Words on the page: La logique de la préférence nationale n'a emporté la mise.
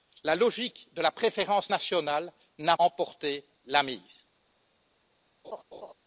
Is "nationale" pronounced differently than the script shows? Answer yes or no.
no